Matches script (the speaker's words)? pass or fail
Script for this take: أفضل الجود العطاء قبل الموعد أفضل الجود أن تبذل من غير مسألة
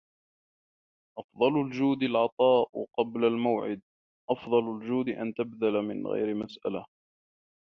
pass